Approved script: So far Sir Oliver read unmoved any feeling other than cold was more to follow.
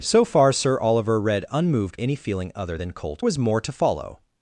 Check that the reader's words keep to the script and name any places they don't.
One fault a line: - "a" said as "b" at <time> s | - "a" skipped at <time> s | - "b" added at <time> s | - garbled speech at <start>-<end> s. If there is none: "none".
none